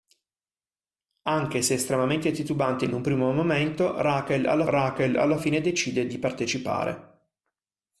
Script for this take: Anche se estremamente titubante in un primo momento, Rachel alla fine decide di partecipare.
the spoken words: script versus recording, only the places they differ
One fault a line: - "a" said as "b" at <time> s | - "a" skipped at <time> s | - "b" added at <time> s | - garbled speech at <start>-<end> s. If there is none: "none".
- "Rachel alla" added at 4.7 s